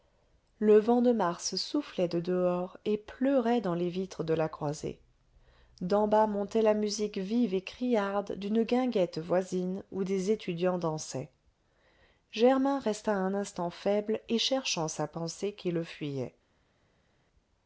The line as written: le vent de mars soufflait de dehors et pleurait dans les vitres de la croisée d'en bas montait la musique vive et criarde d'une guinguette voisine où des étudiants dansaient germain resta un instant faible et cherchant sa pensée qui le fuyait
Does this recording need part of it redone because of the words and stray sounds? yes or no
no